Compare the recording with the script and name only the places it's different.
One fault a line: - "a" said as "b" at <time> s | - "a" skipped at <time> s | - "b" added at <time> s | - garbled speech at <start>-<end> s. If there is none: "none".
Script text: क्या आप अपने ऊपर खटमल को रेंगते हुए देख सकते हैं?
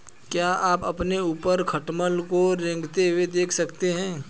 none